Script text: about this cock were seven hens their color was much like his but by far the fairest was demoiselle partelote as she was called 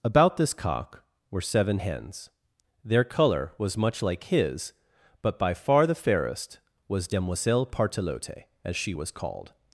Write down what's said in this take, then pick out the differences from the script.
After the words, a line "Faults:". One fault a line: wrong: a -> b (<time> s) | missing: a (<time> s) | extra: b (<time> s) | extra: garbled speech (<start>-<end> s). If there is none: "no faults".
about this cock were seven hens their color was much like his but by far the fairest was demoiselle partelote as she was called
Faults:
no faults